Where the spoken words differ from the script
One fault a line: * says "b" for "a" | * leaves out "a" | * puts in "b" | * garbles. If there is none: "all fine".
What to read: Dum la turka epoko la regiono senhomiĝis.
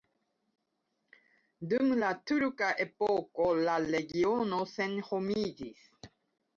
all fine